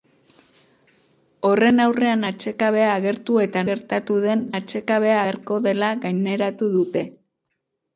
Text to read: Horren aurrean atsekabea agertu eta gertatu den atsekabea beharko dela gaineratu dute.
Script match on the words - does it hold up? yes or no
yes